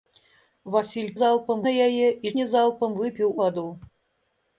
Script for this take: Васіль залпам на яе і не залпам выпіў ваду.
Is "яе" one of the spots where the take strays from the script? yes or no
no